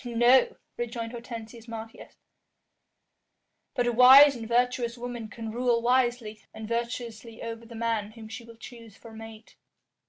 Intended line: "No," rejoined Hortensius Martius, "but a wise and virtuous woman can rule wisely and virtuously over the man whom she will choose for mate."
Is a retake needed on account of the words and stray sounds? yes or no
no